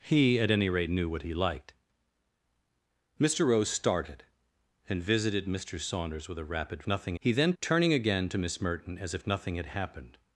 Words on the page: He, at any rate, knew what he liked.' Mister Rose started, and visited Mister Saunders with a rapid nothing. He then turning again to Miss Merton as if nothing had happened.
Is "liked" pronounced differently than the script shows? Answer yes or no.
no